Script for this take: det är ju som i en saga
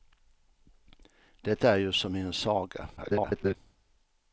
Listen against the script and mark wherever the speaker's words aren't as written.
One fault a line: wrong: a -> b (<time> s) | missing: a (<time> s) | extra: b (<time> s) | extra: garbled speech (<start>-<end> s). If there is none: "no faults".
extra: garbled speech (3.0-3.6 s)